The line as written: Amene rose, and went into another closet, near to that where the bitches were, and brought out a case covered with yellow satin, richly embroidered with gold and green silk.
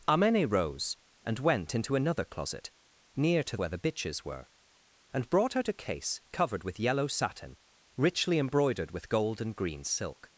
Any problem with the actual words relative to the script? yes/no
yes